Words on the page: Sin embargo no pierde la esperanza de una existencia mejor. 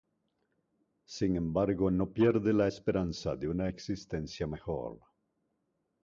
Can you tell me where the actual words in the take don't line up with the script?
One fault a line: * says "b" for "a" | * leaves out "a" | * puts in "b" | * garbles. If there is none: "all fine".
all fine